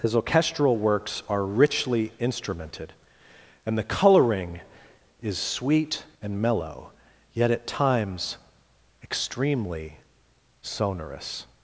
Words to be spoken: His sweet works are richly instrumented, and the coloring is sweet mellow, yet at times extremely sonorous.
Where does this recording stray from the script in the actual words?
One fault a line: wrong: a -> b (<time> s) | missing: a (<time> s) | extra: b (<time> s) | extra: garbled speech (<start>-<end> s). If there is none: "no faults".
wrong: sweet -> orchestral (0.1 s)
extra: and (6.2 s)